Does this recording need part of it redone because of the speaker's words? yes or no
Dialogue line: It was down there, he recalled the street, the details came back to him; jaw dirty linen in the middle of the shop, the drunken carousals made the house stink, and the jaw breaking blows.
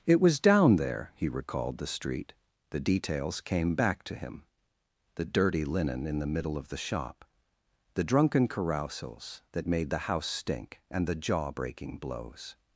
yes